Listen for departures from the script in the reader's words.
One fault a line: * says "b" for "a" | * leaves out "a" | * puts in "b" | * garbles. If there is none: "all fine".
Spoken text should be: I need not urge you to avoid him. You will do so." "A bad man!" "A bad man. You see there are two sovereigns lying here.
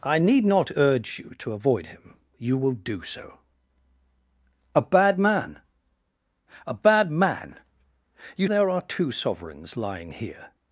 * leaves out "see"